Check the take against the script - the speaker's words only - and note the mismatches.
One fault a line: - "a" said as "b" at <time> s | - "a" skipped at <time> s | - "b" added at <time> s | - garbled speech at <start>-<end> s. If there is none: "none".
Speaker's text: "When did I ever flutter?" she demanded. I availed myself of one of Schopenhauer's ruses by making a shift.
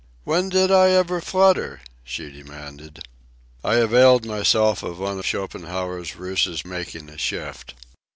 - "of" skipped at 5.2 s
- "by" skipped at 6.6 s